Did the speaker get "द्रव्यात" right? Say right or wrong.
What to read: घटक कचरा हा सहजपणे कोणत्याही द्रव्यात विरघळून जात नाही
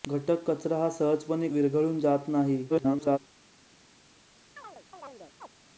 wrong